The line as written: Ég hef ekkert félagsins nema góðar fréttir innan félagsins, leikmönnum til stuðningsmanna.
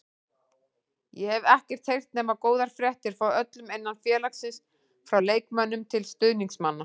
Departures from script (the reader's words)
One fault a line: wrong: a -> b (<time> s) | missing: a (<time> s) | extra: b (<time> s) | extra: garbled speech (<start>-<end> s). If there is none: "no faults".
wrong: félagsins -> heyrt (1.9 s)
extra: frá öllum (3.2 s)
extra: frá (5.1 s)